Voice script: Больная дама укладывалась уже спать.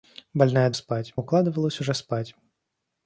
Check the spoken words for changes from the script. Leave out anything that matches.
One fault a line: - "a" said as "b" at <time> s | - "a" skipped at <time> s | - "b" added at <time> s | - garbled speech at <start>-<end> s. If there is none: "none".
- "дама" said as "спать" at 0.7 s